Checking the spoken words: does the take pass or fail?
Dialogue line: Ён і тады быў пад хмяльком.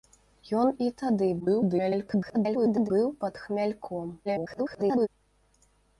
fail